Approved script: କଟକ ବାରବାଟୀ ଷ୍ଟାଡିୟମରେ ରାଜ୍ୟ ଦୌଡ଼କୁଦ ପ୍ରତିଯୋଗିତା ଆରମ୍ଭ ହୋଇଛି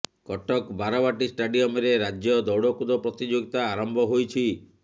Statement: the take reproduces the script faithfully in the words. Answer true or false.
true